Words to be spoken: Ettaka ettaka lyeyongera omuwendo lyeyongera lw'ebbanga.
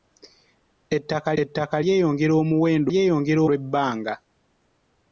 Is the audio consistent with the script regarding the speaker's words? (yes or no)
yes